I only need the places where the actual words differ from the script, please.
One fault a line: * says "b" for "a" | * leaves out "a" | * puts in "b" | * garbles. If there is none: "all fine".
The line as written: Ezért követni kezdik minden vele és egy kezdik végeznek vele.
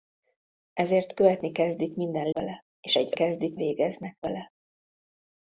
all fine